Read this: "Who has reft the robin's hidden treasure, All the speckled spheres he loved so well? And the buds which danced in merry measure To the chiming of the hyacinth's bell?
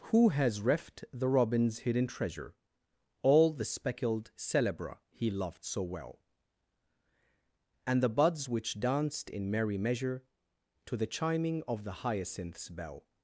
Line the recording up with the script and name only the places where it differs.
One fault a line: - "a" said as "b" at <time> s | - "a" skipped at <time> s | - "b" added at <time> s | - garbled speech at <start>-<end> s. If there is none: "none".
- "spheres" said as "celebra" at 4.3 s